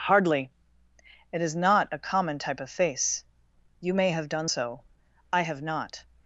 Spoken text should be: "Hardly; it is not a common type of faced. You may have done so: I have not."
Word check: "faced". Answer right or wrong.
wrong